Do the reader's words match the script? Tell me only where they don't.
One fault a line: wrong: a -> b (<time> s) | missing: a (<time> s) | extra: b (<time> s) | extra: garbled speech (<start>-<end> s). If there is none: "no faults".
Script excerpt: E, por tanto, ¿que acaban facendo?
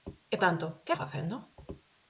missing: por (0.3 s)
missing: acaban (0.9 s)